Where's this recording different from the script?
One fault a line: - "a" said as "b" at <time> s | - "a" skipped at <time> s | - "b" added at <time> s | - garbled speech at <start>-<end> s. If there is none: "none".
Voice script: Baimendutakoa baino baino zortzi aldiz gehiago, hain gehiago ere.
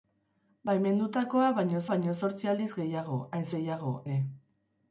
none